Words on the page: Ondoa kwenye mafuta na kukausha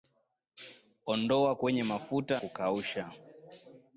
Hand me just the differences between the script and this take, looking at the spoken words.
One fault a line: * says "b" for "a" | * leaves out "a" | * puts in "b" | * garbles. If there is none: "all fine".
* leaves out "na"